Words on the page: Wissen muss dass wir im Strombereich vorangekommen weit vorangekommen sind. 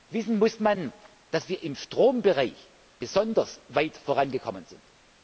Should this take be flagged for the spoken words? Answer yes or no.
yes